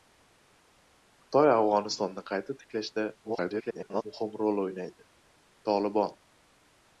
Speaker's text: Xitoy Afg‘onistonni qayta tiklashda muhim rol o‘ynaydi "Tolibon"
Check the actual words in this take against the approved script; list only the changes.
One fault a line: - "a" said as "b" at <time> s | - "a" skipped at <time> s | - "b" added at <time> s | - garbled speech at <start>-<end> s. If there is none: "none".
- garbled speech at 3.2-4.0 s